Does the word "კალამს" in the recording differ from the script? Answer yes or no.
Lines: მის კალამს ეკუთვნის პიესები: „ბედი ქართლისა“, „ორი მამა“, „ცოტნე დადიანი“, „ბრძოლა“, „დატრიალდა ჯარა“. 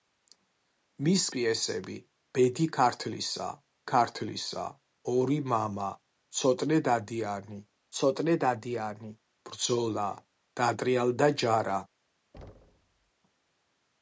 yes